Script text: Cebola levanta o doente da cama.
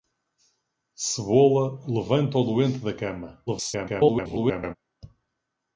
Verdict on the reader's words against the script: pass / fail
fail